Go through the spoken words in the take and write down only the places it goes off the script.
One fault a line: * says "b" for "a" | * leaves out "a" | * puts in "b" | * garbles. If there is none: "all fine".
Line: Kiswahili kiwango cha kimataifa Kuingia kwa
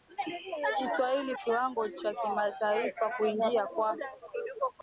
all fine